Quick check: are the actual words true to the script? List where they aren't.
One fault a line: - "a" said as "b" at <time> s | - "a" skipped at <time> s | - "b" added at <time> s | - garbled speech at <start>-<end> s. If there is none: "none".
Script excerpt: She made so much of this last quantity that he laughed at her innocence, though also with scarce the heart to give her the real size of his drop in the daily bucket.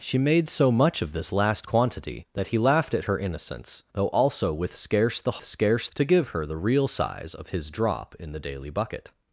- "heart" said as "scarce" at 5.4 s